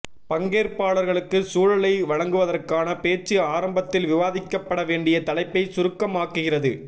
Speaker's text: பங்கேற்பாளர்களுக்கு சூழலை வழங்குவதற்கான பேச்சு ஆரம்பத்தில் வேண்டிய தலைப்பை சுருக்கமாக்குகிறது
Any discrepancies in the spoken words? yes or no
yes